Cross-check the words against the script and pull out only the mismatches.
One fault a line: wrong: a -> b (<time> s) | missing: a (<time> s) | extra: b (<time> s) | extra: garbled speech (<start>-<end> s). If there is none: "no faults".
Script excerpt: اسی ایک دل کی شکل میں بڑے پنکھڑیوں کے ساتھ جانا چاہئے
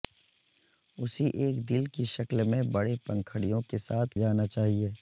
no faults